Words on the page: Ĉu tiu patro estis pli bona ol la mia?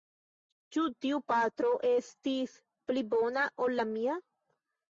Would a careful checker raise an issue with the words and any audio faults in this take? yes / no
no